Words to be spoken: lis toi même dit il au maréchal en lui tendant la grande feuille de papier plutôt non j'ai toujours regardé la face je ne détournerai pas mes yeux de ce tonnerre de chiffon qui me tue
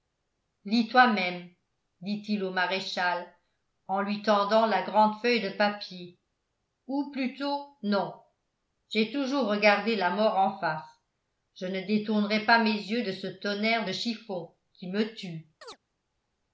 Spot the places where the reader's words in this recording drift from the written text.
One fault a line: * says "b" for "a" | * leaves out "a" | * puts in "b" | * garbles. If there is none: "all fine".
* puts in "ou"
* puts in "mort en"